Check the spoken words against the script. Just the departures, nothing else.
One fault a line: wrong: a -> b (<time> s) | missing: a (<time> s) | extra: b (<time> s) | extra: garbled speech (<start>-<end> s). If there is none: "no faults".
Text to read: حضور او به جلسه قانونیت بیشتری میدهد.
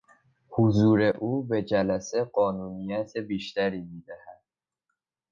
no faults